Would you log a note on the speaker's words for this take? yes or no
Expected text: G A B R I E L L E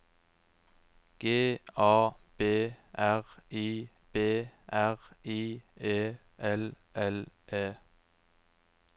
yes